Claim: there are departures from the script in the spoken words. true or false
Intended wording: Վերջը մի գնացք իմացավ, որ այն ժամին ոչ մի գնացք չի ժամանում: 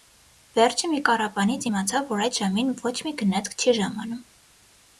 true